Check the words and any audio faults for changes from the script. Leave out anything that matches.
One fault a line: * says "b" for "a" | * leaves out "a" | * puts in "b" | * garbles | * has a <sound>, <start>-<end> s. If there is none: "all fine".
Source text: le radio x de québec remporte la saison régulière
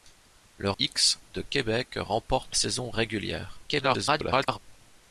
* leaves out "radio"
* leaves out "la"
* garbles